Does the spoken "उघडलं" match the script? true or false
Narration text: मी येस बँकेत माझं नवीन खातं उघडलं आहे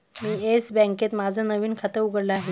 true